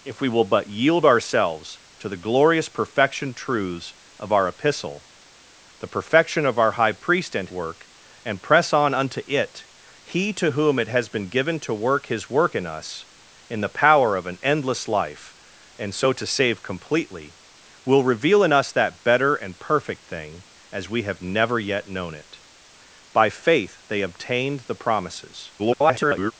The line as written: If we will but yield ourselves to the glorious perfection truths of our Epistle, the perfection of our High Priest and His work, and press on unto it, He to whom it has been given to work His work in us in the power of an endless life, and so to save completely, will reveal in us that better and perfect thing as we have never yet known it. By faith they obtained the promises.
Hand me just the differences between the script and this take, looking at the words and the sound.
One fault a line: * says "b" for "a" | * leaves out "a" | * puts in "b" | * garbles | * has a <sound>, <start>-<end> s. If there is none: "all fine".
* leaves out "His"
* garbles